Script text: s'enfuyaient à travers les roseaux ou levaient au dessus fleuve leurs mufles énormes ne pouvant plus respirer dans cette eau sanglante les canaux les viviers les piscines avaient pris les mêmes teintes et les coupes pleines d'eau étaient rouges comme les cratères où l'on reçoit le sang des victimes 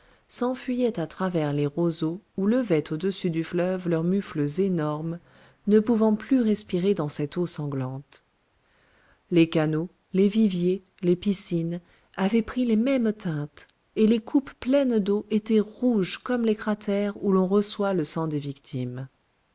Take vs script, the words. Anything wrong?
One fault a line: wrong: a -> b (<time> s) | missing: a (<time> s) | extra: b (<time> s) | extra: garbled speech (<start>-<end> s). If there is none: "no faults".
extra: du (3.3 s)